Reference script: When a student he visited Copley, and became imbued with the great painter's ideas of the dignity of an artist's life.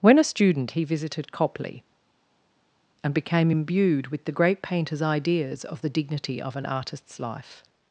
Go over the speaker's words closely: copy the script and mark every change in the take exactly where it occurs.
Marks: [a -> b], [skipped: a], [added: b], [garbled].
When a student he visited Copley, and became imbued with the great painter's ideas of the dignity of an artist's life.